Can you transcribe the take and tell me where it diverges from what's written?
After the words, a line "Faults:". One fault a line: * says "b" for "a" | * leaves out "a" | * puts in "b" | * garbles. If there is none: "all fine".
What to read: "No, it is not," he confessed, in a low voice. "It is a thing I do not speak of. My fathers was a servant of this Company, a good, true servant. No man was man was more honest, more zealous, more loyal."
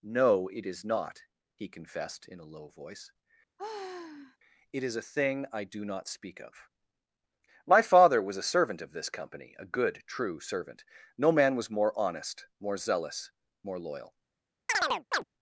"No, it is not," he confessed, in a low voice. "It is a thing I do not speak of. My father was a servant of this Company, a good, true servant. No man was more honest, more zealous, more loyal."
Faults:
* says "father" for "fathers"
* leaves out "man was"